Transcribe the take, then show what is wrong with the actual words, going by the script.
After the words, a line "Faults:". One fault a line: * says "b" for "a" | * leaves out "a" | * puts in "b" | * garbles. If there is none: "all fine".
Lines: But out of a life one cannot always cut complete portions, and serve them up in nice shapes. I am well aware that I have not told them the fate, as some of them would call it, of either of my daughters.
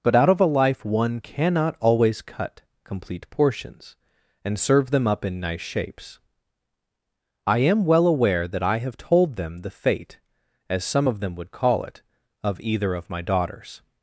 But out of a life one cannot always cut complete portions, and serve them up in nice shapes. I am well aware that I have told them the fate, as some of them would call it, of either of my daughters.
Faults:
* leaves out "not"